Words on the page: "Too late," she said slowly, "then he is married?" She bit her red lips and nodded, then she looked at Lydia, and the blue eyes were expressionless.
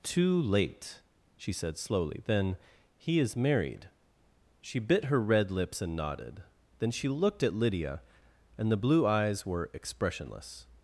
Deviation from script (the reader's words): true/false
false